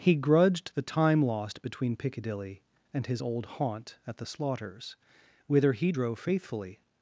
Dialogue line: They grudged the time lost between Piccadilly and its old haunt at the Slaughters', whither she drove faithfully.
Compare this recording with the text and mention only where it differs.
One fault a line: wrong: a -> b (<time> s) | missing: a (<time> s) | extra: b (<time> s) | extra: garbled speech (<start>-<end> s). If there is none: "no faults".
wrong: They -> He (0.0 s)
wrong: its -> his (3.0 s)
wrong: she -> he (5.7 s)